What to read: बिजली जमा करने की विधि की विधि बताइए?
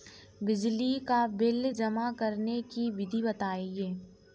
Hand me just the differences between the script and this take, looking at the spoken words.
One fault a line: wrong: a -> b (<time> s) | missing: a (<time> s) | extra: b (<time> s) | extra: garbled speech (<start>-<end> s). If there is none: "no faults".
extra: का बिल (1.0 s)
missing: की विधि (3.2 s)